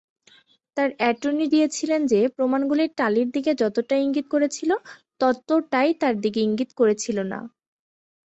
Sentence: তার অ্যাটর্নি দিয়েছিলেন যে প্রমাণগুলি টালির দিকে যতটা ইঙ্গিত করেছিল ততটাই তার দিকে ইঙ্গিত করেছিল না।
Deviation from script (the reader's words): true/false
false